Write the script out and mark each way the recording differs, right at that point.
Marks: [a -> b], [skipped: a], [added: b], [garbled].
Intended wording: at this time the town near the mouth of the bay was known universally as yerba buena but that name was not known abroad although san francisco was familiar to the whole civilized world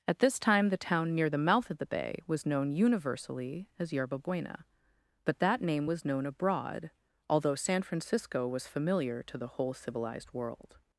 at this time the town near the mouth of the bay was known universally as yerba buena but that name was [skipped: not] known abroad although san francisco was familiar to the whole civilized world